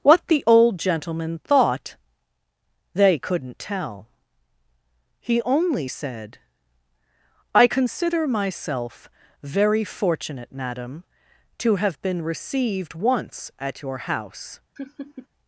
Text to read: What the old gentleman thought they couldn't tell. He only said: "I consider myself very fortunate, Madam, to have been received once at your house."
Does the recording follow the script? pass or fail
pass